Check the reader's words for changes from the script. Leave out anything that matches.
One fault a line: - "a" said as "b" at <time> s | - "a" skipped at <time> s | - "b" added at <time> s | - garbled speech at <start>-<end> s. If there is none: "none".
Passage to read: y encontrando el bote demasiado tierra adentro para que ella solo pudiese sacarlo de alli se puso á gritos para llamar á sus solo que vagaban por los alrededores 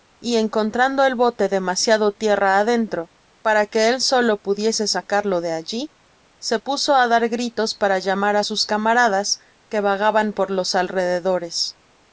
- "ella" said as "él" at 3.9 s
- "dar" added at 7.1 s
- "solo" said as "camaradas" at 8.7 s